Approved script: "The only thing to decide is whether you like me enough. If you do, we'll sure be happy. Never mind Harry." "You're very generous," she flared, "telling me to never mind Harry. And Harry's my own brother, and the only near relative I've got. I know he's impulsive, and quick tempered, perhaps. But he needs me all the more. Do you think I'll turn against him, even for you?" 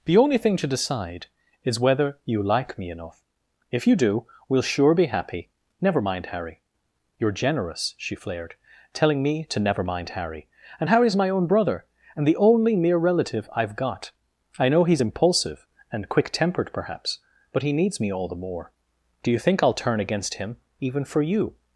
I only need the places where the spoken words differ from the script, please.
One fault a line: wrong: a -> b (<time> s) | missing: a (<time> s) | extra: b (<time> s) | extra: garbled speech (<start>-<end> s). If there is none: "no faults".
missing: very (7.3 s)